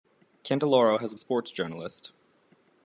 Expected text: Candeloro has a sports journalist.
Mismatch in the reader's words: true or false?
false